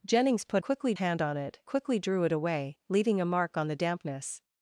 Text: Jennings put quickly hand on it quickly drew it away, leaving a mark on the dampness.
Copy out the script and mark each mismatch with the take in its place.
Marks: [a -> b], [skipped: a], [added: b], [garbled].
Jennings put quickly hand on it quickly drew it away, leaving a mark on the dampness.